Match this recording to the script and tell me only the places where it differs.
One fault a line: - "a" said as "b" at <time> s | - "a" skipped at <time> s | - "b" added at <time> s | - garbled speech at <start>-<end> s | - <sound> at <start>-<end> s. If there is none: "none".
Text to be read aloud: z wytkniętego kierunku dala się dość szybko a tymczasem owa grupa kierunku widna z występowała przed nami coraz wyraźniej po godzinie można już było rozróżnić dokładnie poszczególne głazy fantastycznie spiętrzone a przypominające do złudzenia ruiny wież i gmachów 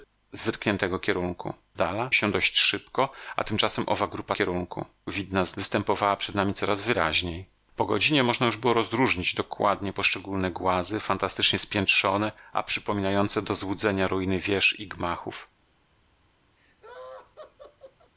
- laugh at 16.6-18.1 s